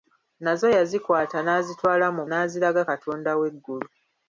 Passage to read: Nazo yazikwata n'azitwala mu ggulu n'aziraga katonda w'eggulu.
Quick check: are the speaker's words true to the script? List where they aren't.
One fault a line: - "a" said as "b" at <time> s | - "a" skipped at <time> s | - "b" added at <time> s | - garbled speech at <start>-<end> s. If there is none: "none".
- "ggulu" skipped at 2.2 s